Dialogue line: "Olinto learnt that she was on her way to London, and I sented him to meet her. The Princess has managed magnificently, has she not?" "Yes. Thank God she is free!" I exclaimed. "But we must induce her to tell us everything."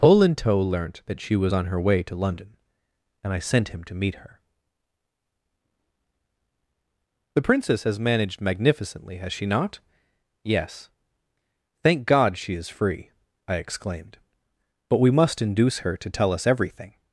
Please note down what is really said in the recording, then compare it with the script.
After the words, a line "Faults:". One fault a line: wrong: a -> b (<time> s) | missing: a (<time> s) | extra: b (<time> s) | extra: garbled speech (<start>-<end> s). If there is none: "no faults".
"Olinto learnt that she was on her way to London, and I sent him to meet her. The Princess has managed magnificently, has she not?" "Yes. Thank God she is free!" I exclaimed. "But we must induce her to tell us everything."
Faults:
wrong: sented -> sent (3.4 s)